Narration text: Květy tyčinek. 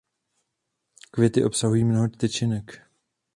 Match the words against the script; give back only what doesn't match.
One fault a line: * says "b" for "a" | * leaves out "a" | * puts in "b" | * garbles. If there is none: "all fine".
* puts in "obsahují mnoho"